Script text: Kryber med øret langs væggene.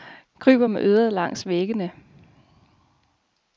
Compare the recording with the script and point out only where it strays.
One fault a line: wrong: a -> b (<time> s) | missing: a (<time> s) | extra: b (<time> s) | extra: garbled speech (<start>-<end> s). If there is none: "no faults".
no faults